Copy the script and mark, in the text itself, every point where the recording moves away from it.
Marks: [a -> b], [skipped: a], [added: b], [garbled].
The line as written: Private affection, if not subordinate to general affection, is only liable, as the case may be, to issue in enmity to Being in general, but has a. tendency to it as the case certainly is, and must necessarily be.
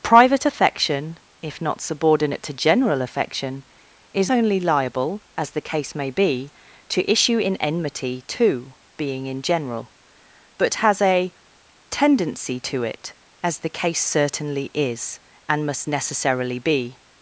Private affection, if not subordinate to general affection, is only liable, as the case may be, to issue in enmity to Being in general, but has a. tendency to it as the case certainly is, and must necessarily be.